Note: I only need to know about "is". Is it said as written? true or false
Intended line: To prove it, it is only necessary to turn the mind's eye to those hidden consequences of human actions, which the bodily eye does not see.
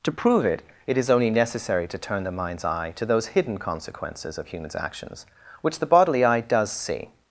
true